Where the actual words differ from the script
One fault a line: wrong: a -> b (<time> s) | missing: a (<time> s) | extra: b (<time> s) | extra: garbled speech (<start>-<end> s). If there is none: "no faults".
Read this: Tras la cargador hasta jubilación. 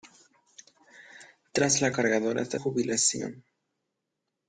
no faults